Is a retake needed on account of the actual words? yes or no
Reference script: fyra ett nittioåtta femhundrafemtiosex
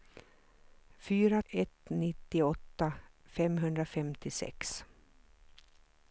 no